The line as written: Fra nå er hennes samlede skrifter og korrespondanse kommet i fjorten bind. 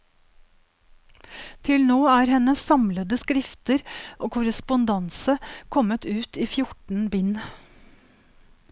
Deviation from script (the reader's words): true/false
true